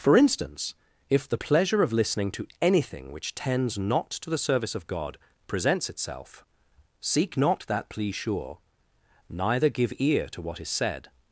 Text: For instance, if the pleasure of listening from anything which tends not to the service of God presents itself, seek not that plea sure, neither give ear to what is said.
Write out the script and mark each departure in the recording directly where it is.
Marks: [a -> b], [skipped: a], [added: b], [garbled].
For instance, if the pleasure of listening [from -> to] anything which tends not to the service of God presents itself, seek not that plea sure, neither give ear to what is said.